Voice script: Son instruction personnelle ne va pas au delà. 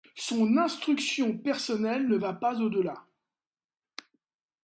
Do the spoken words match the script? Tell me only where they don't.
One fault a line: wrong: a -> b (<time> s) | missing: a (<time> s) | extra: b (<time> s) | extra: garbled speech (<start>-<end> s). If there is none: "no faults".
no faults